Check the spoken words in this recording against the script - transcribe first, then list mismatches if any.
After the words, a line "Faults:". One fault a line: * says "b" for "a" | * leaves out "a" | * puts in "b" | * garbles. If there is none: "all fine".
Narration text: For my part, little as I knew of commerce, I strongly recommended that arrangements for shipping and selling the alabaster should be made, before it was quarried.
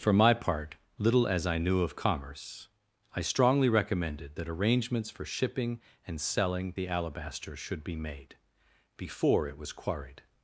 For my part, little as I knew of commerce, I strongly recommended that arrangements for shipping and selling the alabaster should be made, before it was quarried.
Faults:
all fine